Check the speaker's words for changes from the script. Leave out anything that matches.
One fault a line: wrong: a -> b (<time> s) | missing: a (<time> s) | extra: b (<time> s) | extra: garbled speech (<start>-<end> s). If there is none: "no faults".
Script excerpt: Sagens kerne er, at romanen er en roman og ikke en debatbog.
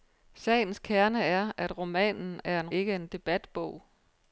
missing: roman og (2.7 s)